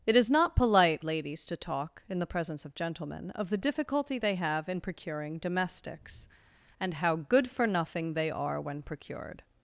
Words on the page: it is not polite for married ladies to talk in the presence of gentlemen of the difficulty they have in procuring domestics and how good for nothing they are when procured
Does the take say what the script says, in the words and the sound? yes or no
no